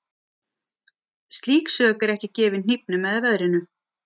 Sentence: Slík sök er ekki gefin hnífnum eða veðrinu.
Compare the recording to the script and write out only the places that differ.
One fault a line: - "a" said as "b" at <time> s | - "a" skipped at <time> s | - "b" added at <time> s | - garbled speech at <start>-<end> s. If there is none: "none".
none